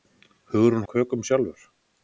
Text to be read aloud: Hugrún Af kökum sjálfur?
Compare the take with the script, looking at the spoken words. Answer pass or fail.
pass